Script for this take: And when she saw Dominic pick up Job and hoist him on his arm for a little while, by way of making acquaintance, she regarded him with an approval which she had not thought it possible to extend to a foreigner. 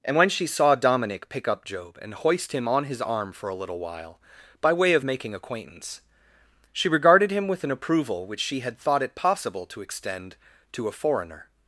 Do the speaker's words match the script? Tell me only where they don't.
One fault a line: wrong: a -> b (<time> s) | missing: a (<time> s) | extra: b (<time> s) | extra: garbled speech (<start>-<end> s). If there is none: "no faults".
missing: not (8.8 s)